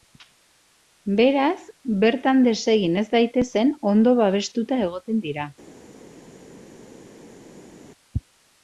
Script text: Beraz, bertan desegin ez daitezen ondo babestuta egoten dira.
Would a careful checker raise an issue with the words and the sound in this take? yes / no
no